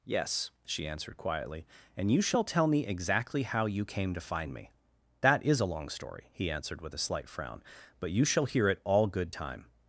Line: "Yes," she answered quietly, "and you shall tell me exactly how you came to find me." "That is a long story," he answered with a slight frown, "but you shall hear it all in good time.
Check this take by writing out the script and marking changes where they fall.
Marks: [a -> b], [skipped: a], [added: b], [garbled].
"Yes," she answered quietly, "and you shall tell me exactly how you came to find me." "That is a long story," he answered with a slight frown, "but you shall hear it all [skipped: in] good time.